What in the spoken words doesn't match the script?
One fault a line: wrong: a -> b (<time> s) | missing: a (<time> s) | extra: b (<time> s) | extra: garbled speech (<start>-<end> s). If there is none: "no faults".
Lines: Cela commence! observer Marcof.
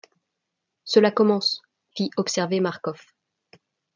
extra: fit (2.0 s)